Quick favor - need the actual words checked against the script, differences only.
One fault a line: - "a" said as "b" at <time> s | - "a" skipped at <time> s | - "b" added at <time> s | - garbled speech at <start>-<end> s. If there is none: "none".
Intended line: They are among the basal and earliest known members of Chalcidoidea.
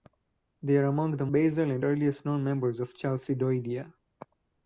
none